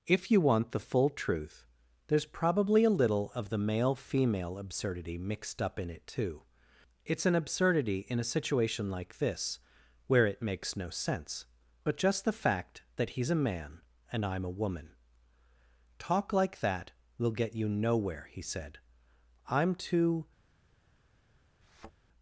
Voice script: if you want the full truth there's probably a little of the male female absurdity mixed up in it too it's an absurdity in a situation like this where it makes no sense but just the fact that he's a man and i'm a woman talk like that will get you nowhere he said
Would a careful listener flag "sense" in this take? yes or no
no